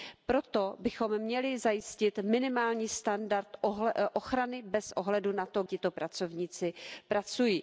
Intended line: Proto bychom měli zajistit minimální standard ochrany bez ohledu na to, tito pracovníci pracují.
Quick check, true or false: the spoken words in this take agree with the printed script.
true